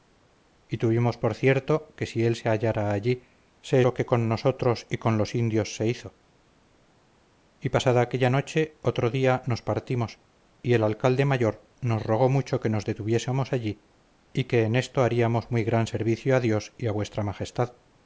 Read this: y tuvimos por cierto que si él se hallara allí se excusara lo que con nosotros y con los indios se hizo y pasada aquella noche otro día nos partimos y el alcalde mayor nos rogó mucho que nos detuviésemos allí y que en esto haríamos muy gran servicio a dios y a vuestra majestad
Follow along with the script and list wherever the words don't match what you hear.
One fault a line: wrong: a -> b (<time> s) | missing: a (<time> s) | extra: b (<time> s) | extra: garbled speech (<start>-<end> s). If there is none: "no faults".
missing: excusara (3.8 s)